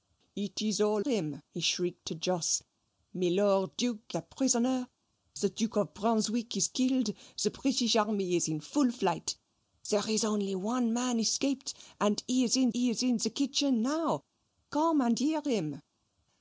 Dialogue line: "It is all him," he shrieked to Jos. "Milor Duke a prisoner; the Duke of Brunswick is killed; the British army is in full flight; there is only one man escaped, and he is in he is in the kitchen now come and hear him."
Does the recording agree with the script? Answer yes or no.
yes